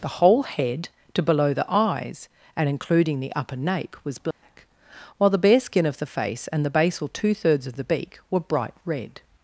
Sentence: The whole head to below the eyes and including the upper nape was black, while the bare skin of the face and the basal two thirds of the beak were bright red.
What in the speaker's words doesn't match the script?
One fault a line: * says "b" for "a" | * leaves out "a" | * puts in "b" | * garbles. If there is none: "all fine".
all fine